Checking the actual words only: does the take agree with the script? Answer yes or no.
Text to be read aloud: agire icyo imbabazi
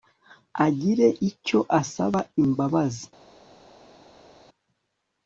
no